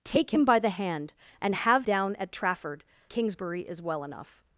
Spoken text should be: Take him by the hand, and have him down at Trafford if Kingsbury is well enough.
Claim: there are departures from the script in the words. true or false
true